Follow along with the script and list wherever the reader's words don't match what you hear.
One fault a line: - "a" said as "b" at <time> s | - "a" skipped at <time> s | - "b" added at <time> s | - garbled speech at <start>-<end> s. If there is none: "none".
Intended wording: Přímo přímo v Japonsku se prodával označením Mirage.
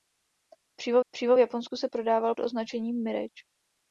none